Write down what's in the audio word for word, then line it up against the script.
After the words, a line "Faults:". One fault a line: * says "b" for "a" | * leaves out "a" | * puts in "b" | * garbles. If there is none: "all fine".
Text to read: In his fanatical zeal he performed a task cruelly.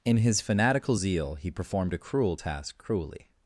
In his fanatical zeal he performed a cruel task cruelly.
Faults:
* puts in "cruel"